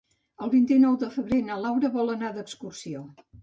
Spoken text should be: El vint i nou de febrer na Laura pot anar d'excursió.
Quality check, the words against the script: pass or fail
fail